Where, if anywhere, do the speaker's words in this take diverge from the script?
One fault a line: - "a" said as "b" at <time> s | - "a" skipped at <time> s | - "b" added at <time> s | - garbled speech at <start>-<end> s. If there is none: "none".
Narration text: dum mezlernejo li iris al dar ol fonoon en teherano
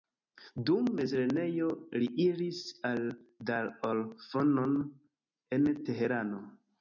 none